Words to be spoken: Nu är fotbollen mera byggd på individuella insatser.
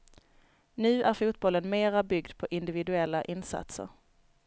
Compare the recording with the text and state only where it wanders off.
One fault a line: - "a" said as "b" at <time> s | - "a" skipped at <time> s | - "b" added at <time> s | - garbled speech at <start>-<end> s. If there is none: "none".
none